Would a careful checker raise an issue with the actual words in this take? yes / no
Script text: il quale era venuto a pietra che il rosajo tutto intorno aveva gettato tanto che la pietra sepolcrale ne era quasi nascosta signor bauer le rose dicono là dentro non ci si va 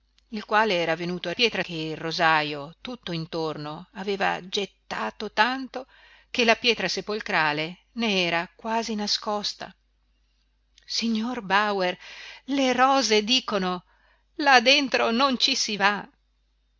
no